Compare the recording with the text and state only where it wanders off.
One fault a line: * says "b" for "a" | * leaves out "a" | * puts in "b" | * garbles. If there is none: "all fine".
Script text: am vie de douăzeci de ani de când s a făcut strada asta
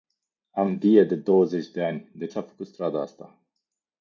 * leaves out "când"